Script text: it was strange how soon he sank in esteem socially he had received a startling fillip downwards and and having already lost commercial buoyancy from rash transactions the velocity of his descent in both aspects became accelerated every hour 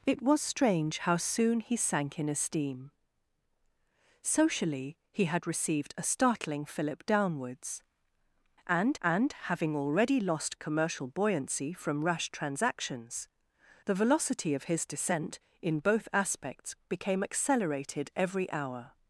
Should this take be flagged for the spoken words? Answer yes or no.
no